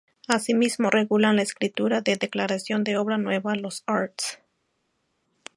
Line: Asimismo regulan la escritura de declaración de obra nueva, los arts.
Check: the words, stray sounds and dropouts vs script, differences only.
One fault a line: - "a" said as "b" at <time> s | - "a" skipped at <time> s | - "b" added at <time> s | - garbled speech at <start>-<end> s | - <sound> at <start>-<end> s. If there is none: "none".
none